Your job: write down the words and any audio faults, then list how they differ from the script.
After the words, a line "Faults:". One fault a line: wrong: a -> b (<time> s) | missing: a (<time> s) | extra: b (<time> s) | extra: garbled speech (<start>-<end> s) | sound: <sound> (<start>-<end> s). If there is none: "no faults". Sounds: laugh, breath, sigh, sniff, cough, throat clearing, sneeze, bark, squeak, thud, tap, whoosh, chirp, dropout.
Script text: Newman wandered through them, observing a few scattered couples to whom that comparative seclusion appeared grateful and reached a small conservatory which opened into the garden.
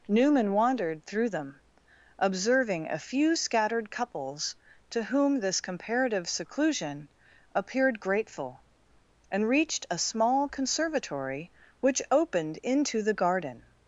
Newman wandered through them, observing a few scattered couples to whom this comparative seclusion appeared grateful and reached a small conservatory which opened into the garden.
Faults:
wrong: that -> this (5.4 s)